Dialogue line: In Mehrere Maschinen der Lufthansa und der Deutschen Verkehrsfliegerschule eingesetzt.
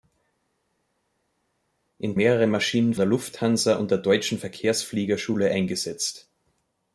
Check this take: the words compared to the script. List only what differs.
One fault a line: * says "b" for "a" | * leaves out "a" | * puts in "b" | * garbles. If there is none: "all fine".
all fine